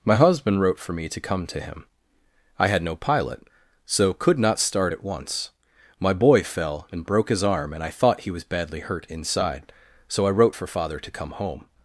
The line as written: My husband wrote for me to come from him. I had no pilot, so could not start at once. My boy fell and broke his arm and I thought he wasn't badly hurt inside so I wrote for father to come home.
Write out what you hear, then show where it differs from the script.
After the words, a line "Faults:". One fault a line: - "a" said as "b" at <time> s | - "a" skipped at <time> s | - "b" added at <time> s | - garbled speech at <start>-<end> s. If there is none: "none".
My husband wrote for me to come to him. I had no pilot, so could not start at once. My boy fell and broke his arm and I thought he was badly hurt inside so I wrote for father to come home.
Faults:
- "from" said as "to" at 1.5 s
- "wasn't" said as "was" at 8.3 s